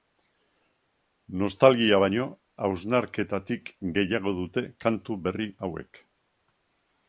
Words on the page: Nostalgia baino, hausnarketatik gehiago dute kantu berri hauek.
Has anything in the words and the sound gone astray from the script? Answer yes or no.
no